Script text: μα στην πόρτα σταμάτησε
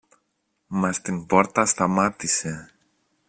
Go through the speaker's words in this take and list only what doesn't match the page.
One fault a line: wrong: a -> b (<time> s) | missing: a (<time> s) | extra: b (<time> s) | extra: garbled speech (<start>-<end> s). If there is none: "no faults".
no faults